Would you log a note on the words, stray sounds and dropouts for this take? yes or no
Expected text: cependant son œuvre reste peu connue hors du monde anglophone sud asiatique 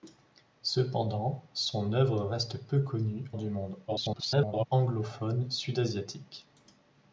yes